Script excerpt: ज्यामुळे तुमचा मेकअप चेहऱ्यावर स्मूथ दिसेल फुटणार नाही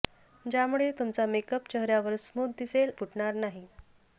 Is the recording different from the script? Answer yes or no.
no